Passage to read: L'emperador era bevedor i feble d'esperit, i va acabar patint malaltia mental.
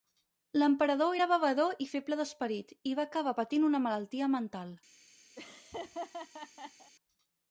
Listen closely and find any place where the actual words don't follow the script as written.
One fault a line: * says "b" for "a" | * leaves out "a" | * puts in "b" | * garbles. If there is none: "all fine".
* puts in "una"